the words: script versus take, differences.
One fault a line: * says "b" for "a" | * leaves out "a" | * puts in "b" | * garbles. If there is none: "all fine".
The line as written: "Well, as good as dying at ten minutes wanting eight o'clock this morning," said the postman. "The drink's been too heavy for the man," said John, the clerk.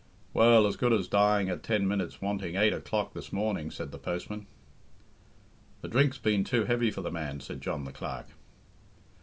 all fine